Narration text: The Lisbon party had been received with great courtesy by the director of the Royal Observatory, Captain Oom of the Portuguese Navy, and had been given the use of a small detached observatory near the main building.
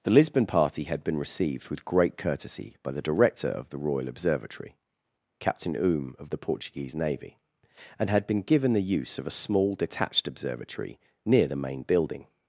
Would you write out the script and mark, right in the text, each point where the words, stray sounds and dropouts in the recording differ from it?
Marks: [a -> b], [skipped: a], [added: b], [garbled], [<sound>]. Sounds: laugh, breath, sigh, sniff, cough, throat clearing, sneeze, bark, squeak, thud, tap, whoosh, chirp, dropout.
The Lisbon party had been received with great courtesy by the director of the Royal Observatory, Captain Oom of the Portuguese Navy, and had been given the use of a small detached observatory near the main building.